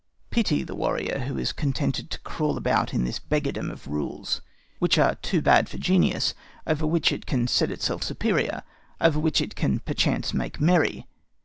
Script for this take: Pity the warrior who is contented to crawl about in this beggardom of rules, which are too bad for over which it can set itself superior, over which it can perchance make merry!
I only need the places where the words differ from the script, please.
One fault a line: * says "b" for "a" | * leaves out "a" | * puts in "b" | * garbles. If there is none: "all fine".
* puts in "genius"